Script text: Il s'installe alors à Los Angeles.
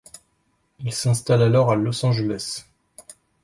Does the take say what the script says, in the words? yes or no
yes